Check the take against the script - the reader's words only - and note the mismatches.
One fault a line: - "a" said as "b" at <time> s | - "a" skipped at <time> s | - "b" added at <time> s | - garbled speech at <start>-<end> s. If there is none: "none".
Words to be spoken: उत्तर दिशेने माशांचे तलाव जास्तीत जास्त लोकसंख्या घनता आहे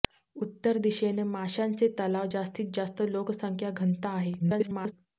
- garbled speech at 4.4-4.9 s